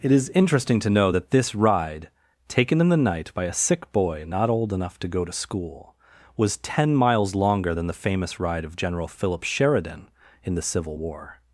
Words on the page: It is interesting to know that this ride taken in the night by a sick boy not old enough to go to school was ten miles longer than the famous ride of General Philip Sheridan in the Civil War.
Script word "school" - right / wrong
right